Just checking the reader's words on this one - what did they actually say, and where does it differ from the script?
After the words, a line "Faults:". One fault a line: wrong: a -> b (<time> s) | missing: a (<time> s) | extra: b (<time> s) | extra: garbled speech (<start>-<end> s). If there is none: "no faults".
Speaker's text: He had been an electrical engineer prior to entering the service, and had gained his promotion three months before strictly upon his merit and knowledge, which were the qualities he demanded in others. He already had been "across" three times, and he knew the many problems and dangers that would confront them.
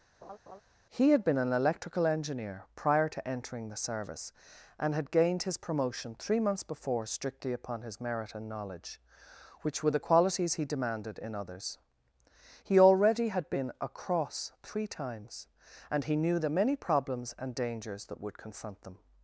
He had been an electrical engineer prior to entering the service, and had gained his promotion three months before strictly upon his merit and knowledge, which were the qualities he demanded in others. He already had been "across" three times, and he knew the many problems and dangers that would confront them.
Faults:
no faults